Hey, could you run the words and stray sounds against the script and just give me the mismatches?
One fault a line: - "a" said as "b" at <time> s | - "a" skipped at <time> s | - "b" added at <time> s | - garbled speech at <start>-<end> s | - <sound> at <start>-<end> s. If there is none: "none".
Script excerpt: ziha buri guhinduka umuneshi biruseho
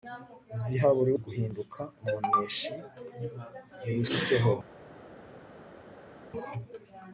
none